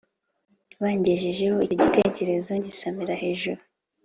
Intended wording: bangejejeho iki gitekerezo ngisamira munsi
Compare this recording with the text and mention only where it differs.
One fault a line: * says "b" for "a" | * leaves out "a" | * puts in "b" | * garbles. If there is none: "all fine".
* says "icyo" for "iki"
* says "hejuru" for "munsi"